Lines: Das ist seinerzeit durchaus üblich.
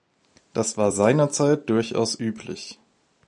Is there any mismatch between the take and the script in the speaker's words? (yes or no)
yes